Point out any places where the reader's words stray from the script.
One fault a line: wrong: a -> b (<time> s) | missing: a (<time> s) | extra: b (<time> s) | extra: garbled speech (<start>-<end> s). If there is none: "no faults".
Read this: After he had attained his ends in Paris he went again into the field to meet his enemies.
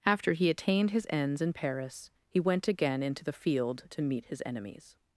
missing: had (0.5 s)